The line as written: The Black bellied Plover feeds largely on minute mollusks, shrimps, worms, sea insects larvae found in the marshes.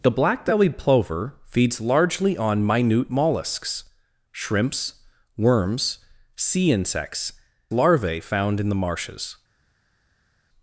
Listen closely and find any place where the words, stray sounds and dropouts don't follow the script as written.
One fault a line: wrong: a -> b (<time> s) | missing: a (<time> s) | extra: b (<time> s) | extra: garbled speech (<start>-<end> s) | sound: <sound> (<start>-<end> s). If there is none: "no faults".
no faults